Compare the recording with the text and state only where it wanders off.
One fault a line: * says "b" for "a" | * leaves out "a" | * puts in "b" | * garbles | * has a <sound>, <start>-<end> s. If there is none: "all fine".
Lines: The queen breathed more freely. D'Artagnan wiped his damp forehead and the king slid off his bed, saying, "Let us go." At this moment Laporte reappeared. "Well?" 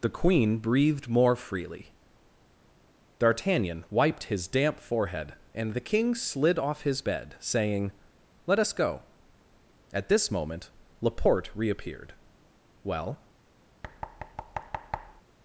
* has a thud, 13.8-15.2 s